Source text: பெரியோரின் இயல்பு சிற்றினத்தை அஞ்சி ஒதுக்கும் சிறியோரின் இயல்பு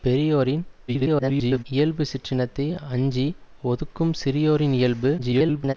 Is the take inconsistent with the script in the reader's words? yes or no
yes